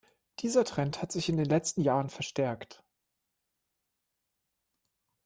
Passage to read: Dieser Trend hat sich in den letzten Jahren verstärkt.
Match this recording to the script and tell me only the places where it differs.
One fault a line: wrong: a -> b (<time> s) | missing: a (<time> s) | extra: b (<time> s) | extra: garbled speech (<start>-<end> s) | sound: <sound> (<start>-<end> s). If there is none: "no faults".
no faults